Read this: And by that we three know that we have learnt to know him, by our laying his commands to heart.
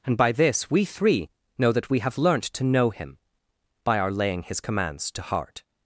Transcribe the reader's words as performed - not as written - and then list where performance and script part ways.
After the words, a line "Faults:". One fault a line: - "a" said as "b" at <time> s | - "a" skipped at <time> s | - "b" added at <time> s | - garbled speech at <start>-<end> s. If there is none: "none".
And by this we three know that we have learnt to know him, by our laying his commands to heart.
Faults:
- "that" said as "this" at 0.3 s